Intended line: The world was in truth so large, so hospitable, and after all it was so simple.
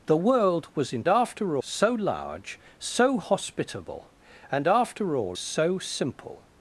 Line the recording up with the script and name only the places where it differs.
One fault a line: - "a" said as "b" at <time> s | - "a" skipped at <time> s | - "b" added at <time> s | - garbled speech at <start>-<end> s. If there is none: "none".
- "truth" said as "after" at 1.1 s
- "it was" skipped at 5.4 s